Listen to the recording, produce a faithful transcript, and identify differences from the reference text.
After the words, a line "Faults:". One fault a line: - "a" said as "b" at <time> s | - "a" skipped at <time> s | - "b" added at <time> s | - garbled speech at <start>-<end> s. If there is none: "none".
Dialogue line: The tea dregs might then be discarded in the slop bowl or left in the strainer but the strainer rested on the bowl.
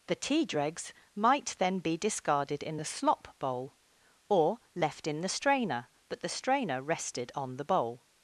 The tea dregs might then be discarded in the slop bowl or left in the strainer but the strainer rested on the bowl.
Faults:
none